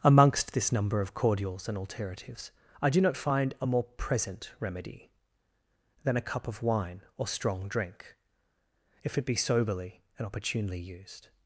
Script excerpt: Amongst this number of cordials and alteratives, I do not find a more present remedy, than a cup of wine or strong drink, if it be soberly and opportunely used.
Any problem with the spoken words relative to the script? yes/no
no